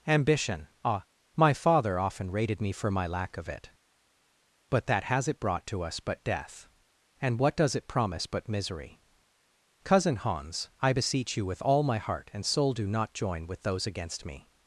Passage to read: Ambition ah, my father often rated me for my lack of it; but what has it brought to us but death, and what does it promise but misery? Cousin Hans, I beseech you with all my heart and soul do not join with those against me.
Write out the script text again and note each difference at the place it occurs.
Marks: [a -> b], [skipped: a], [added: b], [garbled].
Ambition ah, my father often rated me for my lack of it; but [what -> that] has it brought to us but death, and what does it promise but misery? Cousin Hans, I beseech you with all my heart and soul do not join with those against me.